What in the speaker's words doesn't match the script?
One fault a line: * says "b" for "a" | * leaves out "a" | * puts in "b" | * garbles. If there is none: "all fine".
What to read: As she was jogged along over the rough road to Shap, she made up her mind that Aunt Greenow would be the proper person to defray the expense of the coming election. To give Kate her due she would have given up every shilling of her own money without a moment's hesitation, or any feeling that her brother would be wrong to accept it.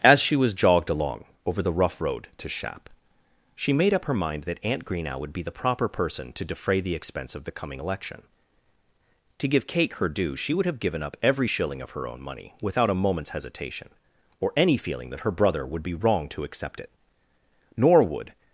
* puts in "Nor would"